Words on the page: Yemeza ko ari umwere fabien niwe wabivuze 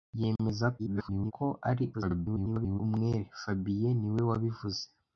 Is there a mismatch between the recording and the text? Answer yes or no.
yes